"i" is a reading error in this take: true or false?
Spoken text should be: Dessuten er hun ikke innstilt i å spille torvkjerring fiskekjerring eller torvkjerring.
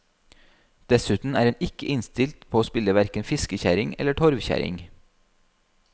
true